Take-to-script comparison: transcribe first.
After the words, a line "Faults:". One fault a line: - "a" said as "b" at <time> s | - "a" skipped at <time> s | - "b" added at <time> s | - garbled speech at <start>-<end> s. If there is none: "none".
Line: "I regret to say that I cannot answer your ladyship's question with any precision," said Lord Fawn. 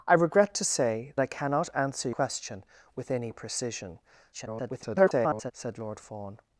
"I regret to say I cannot answer question with any precision," [garbled] said Lord Fawn.
Faults:
- "that" skipped at 1.1 s
- "your ladyship's" skipped at 2.1 s
- garbled speech at 4.3-5.5 s